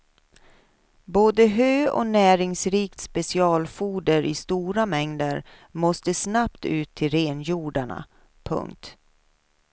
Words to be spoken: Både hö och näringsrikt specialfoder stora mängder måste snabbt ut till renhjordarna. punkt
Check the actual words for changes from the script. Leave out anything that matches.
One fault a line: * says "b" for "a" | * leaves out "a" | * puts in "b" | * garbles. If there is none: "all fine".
* puts in "i"